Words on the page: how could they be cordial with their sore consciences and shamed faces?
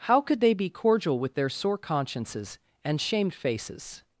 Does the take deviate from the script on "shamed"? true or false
false